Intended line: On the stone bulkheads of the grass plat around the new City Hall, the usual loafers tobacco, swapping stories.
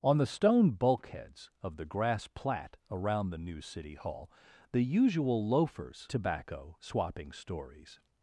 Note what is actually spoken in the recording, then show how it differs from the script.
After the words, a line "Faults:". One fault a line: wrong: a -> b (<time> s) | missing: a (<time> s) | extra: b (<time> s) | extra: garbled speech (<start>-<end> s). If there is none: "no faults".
On the stone bulkheads of the grass plat around the new City Hall, the usual loafers tobacco, swapping stories.
Faults:
no faults